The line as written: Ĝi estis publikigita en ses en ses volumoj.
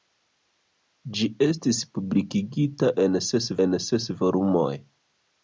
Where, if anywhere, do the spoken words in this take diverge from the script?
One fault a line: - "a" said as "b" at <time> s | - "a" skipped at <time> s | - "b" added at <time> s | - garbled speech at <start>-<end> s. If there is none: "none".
none